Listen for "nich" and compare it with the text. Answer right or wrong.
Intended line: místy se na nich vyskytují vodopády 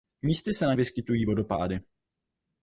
wrong